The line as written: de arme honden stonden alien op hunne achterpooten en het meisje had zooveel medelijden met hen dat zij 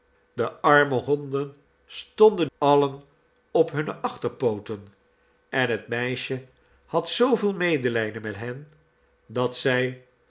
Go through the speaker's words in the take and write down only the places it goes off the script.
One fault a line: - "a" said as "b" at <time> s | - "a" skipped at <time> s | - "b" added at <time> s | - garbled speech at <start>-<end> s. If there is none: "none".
none